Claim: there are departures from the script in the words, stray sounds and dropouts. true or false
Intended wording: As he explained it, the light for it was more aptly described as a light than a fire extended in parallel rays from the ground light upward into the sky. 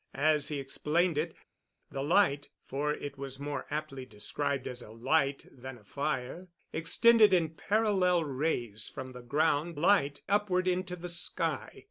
false